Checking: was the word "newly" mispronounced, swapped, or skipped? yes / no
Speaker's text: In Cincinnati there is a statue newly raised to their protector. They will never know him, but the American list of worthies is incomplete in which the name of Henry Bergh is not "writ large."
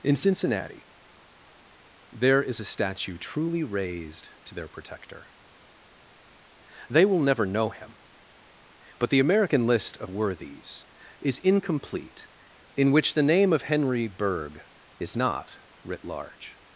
yes